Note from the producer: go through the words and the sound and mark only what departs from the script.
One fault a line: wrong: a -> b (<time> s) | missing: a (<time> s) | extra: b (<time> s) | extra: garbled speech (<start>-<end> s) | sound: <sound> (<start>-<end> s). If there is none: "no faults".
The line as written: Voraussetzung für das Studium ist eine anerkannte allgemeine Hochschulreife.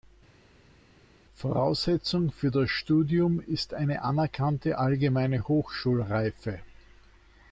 no faults